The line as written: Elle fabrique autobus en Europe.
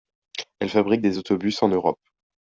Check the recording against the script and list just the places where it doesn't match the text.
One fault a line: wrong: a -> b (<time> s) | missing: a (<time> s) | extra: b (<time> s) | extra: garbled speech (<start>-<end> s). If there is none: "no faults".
extra: des (1.0 s)